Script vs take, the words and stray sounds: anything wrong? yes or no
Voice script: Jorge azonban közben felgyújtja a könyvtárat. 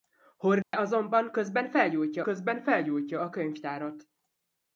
yes